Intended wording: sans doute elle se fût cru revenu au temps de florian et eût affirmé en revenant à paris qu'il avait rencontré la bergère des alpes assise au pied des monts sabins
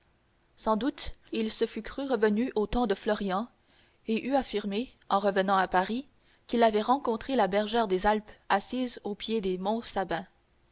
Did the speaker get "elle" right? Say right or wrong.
wrong